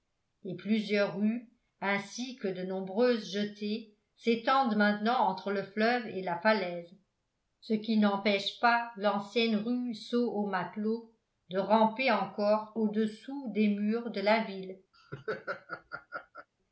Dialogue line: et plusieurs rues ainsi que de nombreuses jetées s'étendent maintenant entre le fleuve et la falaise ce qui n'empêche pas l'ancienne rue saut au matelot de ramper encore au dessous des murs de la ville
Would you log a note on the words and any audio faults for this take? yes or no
yes